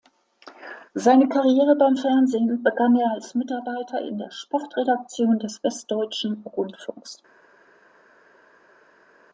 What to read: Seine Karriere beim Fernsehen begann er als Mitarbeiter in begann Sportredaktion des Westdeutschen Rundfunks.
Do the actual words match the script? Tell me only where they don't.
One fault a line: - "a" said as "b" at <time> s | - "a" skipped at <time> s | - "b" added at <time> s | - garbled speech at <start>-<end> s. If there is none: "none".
- "begann" said as "der" at 4.2 s